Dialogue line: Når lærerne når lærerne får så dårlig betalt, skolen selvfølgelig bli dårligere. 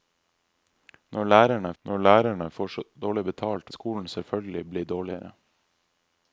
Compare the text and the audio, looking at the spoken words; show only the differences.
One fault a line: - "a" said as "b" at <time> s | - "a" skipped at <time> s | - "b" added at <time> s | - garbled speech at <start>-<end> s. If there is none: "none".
none